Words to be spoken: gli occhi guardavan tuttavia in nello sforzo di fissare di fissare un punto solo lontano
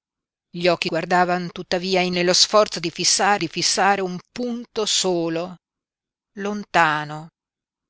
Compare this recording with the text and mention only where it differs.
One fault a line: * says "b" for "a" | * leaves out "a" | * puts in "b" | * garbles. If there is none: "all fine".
all fine